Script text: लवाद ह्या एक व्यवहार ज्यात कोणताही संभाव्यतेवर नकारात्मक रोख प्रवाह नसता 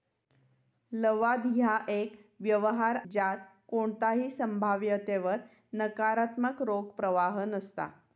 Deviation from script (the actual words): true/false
false